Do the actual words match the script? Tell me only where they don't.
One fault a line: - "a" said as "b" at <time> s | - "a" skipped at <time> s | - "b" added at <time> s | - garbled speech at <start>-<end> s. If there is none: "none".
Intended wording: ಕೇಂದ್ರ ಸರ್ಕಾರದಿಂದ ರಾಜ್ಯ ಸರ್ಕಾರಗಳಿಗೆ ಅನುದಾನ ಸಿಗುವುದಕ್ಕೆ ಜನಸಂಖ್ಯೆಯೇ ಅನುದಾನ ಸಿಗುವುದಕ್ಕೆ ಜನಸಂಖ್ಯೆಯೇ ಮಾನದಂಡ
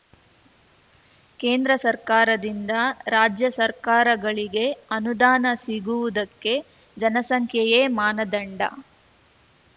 - "ಅನುದಾನ ಸಿಗುವುದಕ್ಕೆ ಜನಸಂಖ್ಯೆಯೇ" skipped at 7.8 s